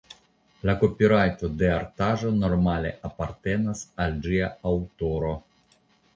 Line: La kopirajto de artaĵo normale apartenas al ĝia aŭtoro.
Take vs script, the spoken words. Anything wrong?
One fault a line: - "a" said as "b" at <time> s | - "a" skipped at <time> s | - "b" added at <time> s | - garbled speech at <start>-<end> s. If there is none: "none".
none